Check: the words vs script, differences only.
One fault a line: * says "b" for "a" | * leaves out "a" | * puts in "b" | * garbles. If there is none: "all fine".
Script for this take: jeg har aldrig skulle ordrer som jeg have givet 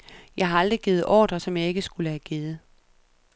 * says "givet" for "skulle"
* puts in "ikke skulle"